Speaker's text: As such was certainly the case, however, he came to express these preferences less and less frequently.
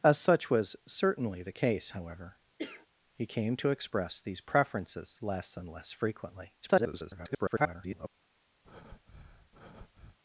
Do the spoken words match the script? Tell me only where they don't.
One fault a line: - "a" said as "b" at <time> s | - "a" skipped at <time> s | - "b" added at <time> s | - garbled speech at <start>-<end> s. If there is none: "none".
- garbled speech at 6.6-8.1 s